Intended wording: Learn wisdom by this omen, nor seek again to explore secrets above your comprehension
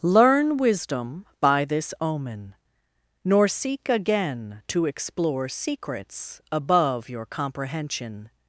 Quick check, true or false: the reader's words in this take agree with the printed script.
true